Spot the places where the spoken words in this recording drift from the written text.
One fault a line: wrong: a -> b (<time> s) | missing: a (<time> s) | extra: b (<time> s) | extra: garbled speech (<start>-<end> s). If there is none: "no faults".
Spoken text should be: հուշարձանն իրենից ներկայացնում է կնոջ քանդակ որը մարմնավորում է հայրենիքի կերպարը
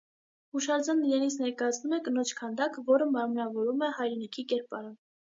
no faults